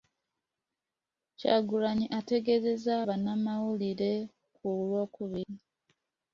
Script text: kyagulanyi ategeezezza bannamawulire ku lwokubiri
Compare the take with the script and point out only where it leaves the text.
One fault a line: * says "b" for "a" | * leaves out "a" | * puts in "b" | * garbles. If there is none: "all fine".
all fine